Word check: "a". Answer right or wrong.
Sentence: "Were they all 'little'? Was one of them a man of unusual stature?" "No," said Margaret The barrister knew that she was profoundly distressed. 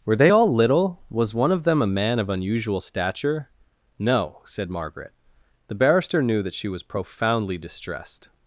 right